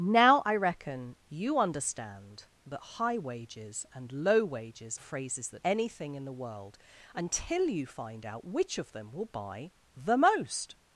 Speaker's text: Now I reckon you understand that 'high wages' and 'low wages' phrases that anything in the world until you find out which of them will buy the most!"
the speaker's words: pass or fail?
pass